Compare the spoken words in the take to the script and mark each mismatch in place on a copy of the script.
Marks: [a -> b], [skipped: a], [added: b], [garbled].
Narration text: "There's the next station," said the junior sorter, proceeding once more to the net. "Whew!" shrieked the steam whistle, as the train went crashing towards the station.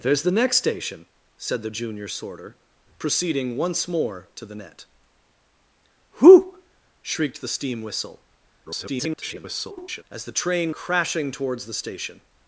"There's the next station," said the junior sorter, proceeding once more to the net. "Whew!" shrieked the steam whistle, [garbled] as the train [skipped: went] crashing towards the station.